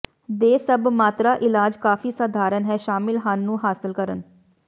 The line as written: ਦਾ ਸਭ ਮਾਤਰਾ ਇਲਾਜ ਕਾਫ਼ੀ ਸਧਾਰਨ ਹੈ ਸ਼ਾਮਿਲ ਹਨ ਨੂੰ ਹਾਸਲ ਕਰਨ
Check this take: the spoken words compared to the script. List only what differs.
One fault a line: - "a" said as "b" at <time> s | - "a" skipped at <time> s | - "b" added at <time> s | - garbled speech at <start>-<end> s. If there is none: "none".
- "ਦਾ" said as "ਦੇ" at 0.3 s